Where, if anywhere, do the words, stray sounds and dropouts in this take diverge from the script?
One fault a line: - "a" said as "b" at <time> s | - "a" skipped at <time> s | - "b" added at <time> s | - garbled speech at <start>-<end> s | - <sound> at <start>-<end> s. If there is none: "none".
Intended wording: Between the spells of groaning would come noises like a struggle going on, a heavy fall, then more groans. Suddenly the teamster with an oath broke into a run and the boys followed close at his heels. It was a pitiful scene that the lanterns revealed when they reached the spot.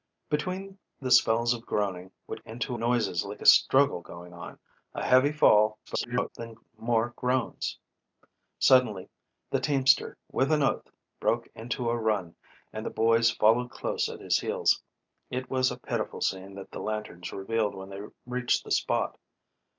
- "come" said as "into" at 2.5 s
- garbled speech at 5.9-6.3 s